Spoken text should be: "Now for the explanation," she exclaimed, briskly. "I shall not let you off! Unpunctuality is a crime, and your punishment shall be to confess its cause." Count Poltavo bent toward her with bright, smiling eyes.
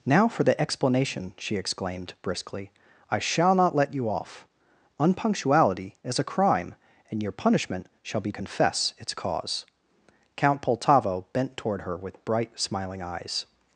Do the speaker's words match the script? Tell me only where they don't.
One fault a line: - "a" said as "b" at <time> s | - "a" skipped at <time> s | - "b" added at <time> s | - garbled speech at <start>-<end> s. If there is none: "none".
- "to" skipped at 8.3 s